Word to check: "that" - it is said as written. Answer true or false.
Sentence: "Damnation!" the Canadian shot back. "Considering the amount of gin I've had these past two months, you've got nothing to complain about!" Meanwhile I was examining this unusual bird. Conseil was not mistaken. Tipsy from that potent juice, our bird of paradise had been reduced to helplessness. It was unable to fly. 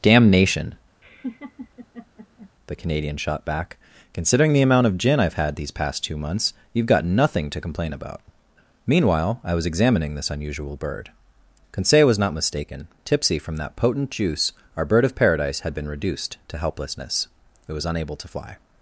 true